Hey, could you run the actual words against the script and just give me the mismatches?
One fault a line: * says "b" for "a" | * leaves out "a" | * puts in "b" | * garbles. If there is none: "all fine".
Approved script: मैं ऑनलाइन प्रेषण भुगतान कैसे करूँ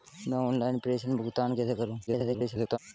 * garbles